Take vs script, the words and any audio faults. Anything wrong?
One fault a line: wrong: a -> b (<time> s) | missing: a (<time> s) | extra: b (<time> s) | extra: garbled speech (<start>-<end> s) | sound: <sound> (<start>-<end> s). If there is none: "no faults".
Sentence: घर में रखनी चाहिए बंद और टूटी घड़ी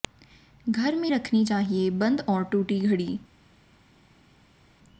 no faults